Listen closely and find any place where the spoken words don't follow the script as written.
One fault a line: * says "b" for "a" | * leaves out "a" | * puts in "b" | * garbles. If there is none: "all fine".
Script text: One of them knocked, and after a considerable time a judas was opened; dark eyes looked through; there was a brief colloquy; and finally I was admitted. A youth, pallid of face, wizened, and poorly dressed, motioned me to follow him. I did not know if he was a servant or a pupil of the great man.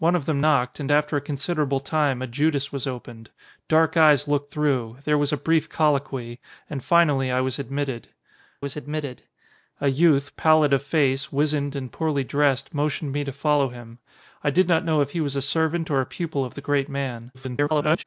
* puts in "was admitted"
* garbles